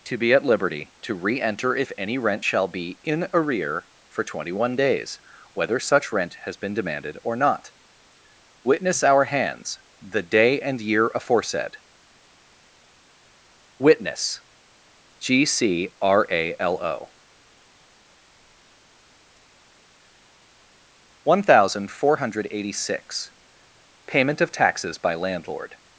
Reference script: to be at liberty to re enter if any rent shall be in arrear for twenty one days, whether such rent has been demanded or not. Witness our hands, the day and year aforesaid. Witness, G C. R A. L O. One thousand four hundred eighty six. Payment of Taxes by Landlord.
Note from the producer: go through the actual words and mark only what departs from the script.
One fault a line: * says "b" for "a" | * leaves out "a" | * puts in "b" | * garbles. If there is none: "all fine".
all fine